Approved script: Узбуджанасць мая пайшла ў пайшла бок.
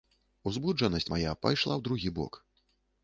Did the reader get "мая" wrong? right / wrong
right